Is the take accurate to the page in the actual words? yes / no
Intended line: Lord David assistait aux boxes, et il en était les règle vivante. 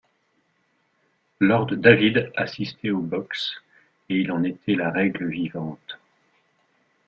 no